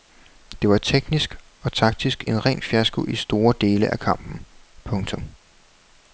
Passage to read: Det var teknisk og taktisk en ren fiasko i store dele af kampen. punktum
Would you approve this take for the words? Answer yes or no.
yes